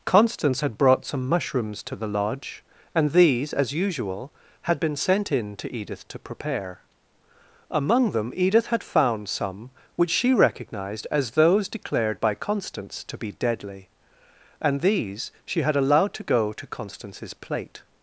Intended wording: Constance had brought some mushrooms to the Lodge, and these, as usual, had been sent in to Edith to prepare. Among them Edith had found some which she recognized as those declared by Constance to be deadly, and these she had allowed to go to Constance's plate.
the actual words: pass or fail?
pass